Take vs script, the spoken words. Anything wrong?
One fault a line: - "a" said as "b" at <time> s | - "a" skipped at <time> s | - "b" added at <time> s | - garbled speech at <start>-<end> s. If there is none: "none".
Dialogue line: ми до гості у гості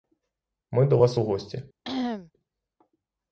- "гості" said as "вас" at 0.9 s